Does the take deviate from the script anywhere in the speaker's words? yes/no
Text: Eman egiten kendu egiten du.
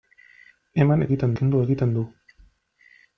no